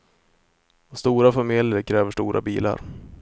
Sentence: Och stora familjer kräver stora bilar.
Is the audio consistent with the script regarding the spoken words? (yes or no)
yes